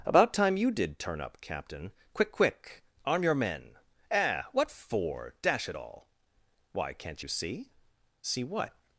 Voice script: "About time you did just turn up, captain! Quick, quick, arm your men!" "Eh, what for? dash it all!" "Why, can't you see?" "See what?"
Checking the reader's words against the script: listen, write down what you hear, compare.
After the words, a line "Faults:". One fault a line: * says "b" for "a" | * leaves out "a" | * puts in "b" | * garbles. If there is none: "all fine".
"About time you did turn up, captain! Quick, quick, arm your men!" "Eh, what for? dash it all!" "Why, can't you see?" "See what?"
Faults:
* leaves out "just"